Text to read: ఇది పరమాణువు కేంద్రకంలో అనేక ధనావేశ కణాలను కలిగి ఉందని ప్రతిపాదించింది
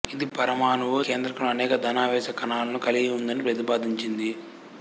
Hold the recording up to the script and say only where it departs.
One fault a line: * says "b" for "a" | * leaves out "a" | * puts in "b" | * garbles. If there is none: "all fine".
all fine